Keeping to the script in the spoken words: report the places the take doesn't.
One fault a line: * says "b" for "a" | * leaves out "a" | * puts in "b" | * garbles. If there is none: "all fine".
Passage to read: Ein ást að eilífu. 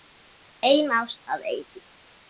all fine